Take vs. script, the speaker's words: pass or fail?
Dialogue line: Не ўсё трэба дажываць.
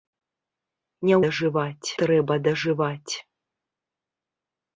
fail